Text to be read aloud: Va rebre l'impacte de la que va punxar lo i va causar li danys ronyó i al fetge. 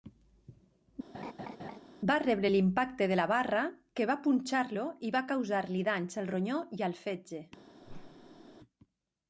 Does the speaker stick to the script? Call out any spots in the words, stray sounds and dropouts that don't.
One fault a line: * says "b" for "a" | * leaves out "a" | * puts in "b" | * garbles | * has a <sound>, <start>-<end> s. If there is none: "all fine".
* has a laugh, 1.1-1.8 s
* puts in "barra"
* puts in "al"
* has a whoosh, 7.8-8.6 s